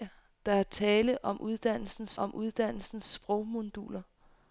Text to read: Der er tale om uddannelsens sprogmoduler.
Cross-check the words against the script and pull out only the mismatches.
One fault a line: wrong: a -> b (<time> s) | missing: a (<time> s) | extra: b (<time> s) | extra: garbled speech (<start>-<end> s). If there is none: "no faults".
extra: om uddannelsens (2.2 s)